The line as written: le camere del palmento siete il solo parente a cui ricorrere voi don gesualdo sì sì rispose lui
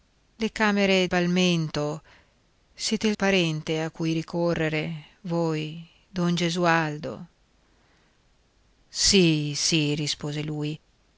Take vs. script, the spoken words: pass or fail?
fail